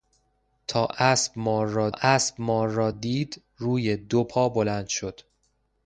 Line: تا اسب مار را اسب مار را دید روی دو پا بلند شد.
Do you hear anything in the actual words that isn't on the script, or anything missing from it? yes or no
no